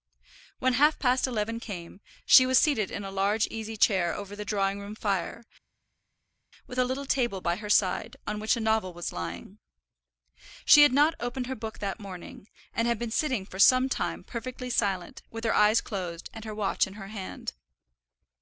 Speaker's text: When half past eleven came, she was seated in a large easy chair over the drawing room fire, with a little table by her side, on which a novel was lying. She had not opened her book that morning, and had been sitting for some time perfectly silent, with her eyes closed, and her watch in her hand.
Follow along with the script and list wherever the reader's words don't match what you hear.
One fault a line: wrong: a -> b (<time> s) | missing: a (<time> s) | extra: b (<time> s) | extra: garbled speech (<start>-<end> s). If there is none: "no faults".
no faults